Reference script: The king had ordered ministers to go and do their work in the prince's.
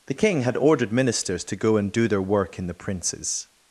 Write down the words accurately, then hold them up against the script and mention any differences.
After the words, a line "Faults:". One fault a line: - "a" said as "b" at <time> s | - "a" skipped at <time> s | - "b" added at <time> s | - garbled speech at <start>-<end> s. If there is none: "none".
The king had ordered ministers to go and do their work in the prince's.
Faults:
none